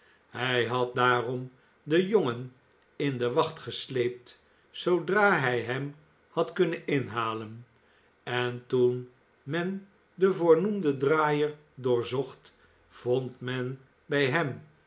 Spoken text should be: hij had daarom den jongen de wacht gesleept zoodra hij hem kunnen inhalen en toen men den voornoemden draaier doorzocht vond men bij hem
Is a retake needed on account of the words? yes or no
yes